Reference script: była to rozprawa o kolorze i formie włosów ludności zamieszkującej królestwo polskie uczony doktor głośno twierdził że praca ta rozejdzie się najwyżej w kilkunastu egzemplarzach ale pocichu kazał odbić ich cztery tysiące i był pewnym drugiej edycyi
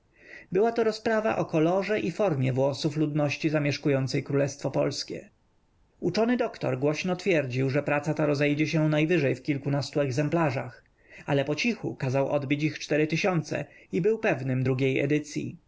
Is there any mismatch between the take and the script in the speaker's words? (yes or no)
no